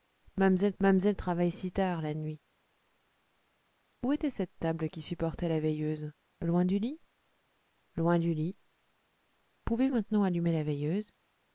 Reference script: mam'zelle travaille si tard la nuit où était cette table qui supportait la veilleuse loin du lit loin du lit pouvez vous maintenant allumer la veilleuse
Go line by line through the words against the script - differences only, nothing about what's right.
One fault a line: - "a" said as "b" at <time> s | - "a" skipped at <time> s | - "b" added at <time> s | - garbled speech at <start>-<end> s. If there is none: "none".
- "mam'zelle" added at 0.8 s
- "vous" skipped at 9.9 s